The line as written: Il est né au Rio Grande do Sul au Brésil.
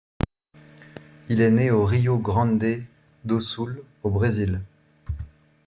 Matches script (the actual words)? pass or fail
pass